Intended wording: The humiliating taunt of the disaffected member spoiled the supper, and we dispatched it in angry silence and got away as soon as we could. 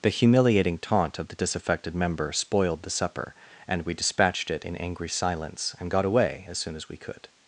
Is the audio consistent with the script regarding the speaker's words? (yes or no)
yes